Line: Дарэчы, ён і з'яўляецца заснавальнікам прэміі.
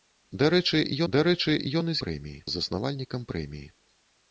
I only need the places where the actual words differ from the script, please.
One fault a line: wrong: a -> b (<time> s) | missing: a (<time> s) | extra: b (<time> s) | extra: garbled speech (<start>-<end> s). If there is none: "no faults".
extra: дарэчы (1.1 s)
wrong: з'яўляецца -> прэміі (2.1 s)